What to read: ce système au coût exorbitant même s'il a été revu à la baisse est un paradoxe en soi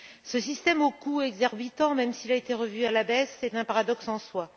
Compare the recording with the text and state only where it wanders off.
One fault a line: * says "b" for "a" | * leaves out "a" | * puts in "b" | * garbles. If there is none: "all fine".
all fine